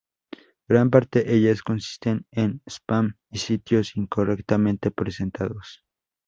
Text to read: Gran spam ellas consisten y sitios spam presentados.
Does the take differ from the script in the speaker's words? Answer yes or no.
yes